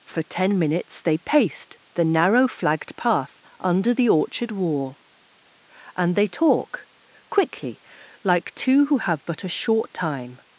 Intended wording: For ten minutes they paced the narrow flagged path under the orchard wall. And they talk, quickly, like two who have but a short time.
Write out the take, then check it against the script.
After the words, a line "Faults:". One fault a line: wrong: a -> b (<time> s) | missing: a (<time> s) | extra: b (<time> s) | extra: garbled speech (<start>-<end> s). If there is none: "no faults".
For ten minutes they paced the narrow flagged path under the orchard wall. And they talk, quickly, like two who have but a short time.
Faults:
no faults